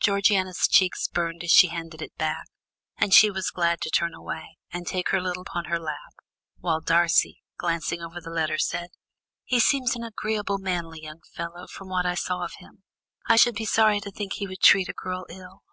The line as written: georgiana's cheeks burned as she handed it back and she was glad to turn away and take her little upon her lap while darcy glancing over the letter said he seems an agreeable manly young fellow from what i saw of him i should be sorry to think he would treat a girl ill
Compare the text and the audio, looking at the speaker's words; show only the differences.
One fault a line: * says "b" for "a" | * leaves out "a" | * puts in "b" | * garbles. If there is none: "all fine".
all fine